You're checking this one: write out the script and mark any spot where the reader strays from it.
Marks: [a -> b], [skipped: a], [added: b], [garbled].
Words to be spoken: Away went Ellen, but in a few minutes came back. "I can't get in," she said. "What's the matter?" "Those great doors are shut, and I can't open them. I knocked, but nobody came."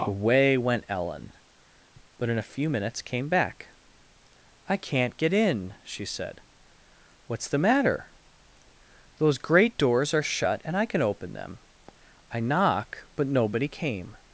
Away went Ellen, but in a few minutes came back. "I can't get in," she said. "What's the matter?" "Those great doors are shut, and I [can't -> can] open them. I [knocked, -> knock] but nobody came."